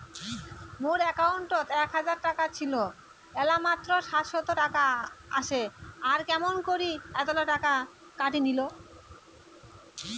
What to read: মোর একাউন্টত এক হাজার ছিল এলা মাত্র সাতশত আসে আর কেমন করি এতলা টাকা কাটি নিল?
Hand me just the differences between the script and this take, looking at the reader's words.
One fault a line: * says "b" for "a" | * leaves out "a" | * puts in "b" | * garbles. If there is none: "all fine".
* puts in "টাকা"
* puts in "টাকা"